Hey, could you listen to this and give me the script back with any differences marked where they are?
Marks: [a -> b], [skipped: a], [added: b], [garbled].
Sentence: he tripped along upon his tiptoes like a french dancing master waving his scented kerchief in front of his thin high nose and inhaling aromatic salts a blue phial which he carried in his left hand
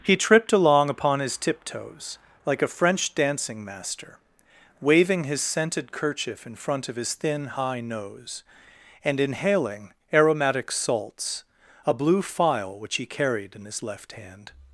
he tripped along upon his tiptoes like a french dancing master waving his scented kerchief in front of his thin high nose and inhaling aromatic salts a blue phial which he carried in his left hand